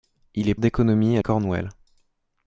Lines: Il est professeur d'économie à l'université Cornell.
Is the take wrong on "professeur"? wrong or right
wrong